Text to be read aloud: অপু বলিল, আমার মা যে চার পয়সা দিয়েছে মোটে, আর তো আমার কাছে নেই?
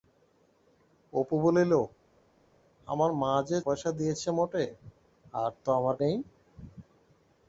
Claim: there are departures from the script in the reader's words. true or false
true